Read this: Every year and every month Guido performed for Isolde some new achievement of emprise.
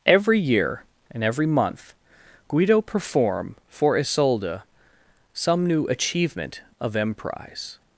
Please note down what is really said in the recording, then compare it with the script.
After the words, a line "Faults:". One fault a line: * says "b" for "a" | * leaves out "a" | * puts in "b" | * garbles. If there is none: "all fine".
Every year and every month Guido perform for Isolde some new achievement of emprise.
Faults:
* says "perform" for "performed"